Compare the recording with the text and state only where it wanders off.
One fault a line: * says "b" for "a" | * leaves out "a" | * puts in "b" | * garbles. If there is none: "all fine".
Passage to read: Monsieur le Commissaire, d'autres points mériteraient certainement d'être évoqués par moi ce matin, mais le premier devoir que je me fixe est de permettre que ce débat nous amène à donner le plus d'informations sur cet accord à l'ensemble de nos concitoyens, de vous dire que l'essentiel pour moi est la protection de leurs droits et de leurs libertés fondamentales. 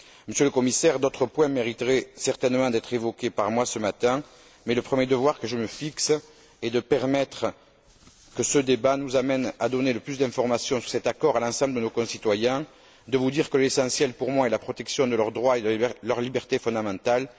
all fine